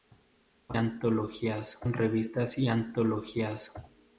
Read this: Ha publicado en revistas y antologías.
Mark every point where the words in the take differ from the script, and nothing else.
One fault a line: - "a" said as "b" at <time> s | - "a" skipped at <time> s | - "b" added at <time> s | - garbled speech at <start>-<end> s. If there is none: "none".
- "publicado" said as "antologías" at 0.7 s